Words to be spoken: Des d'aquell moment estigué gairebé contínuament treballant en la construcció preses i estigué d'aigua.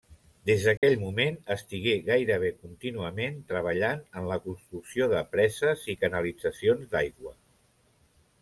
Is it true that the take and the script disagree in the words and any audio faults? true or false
true